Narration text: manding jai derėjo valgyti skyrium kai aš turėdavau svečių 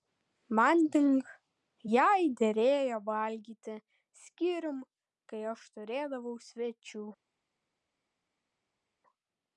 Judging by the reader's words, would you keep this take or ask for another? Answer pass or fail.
pass